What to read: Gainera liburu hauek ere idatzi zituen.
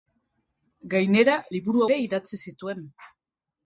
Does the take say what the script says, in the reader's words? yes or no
no